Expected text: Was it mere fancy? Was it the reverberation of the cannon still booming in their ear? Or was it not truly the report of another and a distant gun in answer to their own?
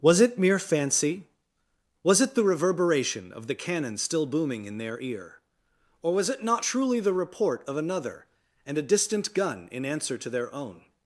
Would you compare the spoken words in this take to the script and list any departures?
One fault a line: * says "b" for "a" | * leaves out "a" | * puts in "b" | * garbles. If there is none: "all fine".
all fine